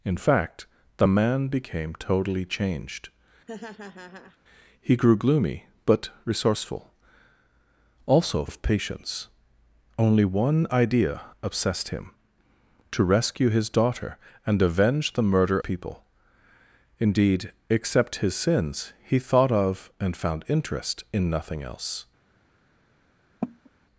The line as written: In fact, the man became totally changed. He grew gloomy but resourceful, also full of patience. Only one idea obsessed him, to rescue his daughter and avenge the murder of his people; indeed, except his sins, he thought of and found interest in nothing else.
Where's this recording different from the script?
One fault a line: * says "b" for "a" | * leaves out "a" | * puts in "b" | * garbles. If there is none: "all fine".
* leaves out "full"
* leaves out "of his"